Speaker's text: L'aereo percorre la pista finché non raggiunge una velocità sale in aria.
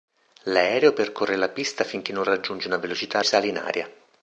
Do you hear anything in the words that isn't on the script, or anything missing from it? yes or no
no